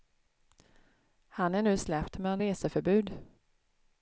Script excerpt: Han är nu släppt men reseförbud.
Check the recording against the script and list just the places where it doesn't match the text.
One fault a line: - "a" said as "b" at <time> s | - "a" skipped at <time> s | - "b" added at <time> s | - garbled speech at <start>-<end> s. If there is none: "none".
none